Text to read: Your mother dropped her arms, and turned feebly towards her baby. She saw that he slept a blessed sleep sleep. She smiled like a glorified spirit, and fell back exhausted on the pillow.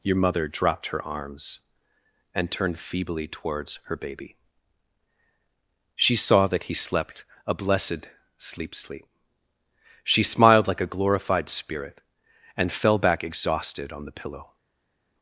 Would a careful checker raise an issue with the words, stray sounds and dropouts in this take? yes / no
no